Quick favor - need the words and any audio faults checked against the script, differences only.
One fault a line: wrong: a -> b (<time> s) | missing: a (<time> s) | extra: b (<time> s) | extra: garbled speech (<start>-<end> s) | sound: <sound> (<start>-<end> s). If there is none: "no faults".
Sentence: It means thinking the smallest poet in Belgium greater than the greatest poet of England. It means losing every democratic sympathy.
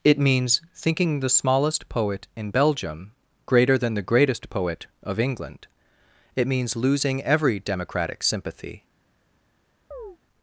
sound: chirp (9.9-10.2 s)